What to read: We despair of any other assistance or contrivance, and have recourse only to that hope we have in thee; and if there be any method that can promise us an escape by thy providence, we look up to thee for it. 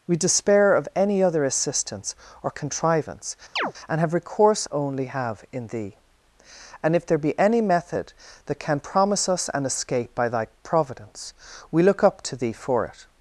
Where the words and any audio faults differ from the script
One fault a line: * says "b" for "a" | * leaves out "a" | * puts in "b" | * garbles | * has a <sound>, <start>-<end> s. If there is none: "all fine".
* has a chirp, 3.6-3.7 s
* leaves out "to that hope we"